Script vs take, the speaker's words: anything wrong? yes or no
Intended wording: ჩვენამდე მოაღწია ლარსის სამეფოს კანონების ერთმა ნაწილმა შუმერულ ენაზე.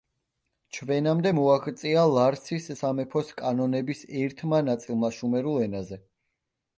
no